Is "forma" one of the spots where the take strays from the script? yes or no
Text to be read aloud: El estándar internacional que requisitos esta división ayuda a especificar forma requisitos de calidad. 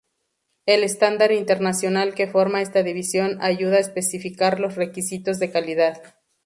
yes